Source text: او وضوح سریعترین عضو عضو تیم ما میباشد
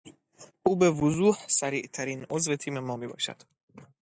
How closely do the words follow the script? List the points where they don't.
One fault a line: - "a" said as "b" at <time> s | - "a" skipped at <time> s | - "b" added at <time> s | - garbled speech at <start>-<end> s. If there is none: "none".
- "به" added at 0.8 s
- "عضو" skipped at 2.6 s